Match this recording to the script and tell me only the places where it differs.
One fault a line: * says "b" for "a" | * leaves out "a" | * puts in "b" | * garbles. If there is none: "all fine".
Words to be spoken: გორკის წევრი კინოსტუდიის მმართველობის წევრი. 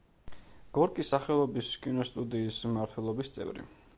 * says "სახელობის" for "წევრი"